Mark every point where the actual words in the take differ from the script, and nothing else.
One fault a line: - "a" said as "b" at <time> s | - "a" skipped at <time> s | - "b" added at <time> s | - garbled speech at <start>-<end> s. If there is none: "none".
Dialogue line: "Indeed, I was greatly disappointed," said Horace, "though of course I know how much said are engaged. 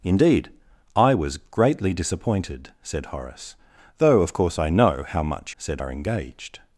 none